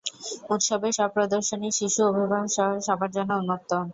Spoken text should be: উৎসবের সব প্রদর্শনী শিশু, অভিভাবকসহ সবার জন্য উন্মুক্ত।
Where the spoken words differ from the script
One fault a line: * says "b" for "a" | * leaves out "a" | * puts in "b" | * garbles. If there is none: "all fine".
all fine